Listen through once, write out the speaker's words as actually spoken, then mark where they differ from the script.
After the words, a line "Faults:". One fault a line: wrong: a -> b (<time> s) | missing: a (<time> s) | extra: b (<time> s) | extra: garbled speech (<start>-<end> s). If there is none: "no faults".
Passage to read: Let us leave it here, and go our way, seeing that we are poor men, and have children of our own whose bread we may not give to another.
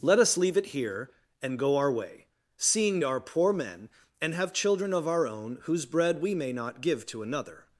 Let us leave it here, and go our way, seeing are poor men, and have children of our own whose bread we may not give to another.
Faults:
missing: that we (3.0 s)